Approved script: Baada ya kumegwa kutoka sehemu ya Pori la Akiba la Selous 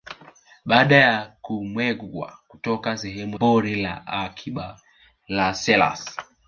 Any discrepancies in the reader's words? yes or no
yes